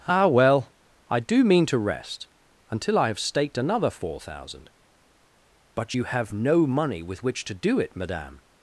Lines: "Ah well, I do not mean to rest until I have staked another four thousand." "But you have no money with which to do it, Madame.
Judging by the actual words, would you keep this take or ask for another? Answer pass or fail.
fail